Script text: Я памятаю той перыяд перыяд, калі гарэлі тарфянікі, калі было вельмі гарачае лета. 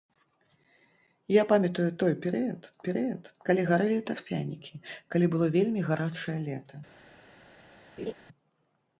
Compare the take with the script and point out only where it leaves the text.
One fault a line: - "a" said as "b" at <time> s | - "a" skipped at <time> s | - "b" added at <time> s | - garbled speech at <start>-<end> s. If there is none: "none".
none